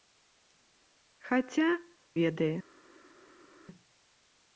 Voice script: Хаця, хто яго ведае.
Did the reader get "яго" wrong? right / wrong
wrong